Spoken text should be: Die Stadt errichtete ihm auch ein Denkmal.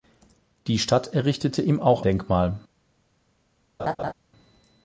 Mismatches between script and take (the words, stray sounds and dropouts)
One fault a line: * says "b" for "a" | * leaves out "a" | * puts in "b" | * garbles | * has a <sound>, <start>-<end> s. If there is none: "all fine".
* leaves out "ein"
* has a laugh, 3.8-4.1 s